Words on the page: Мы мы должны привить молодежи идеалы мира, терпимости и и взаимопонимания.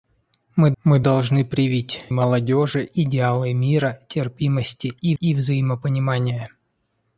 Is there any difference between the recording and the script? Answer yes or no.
no